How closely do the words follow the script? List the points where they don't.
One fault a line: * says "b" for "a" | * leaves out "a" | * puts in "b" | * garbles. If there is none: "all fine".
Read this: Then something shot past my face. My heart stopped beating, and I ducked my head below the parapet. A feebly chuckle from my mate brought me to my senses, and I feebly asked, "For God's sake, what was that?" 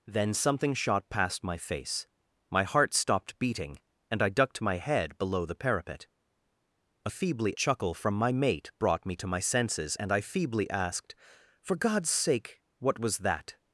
all fine